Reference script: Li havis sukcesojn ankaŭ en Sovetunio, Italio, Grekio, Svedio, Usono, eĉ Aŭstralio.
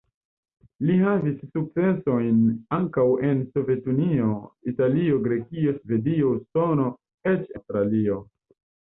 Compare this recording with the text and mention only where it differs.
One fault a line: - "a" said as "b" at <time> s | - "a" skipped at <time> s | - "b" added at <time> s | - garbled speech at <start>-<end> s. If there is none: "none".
none